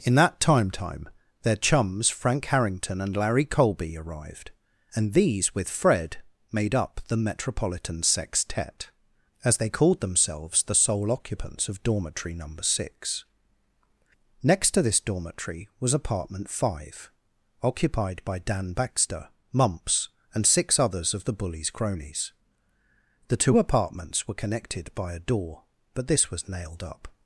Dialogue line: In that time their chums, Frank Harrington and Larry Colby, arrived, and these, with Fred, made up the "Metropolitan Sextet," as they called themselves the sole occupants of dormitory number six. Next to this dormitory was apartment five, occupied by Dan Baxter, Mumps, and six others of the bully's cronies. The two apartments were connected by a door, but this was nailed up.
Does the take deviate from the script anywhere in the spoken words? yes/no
yes